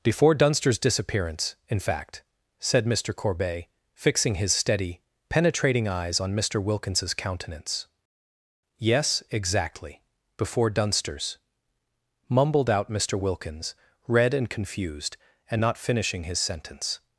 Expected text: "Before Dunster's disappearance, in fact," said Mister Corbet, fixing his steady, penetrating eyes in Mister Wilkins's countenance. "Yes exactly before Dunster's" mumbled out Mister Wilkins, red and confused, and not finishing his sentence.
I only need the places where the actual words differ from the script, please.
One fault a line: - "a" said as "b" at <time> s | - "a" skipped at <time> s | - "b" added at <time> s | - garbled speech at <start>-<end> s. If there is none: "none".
- "in" said as "on" at 6.2 s